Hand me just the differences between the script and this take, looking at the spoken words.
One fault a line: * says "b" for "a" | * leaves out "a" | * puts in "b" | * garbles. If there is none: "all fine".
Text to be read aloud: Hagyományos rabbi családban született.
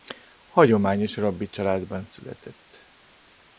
all fine